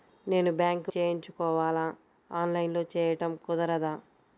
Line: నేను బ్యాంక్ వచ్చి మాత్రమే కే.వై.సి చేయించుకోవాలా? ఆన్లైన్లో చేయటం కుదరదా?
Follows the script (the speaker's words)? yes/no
no